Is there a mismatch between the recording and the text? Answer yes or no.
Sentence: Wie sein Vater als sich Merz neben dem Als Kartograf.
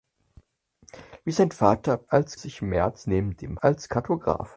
no